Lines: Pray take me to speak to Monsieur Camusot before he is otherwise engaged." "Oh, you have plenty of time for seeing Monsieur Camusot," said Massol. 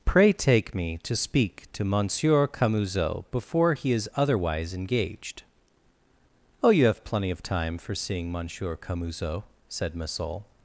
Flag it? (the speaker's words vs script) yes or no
no